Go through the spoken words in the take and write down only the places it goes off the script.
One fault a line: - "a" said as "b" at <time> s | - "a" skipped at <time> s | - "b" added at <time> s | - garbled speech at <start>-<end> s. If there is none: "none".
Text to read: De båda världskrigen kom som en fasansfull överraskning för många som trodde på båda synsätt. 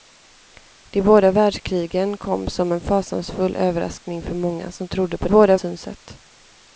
none